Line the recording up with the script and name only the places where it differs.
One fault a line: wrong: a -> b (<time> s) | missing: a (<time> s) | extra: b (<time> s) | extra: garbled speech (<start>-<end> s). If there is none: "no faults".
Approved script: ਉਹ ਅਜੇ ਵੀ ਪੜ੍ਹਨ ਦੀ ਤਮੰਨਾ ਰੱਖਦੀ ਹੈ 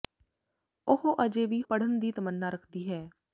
no faults